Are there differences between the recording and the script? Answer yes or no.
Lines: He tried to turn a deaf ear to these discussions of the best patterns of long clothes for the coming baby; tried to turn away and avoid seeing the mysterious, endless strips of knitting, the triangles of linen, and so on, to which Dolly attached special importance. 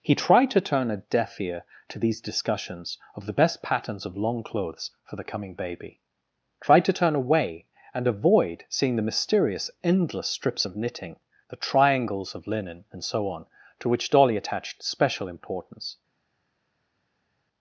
no